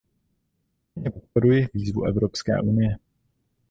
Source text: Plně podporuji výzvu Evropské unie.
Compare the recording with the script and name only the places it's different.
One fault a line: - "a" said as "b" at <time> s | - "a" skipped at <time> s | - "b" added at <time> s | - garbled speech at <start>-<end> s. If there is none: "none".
none